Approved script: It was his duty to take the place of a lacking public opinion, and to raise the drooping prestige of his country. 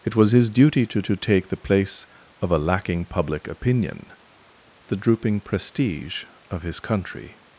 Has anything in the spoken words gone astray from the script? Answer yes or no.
yes